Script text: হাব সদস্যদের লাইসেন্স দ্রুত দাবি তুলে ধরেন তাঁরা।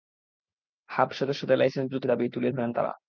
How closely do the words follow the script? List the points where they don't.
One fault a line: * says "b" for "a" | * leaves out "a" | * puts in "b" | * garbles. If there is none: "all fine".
all fine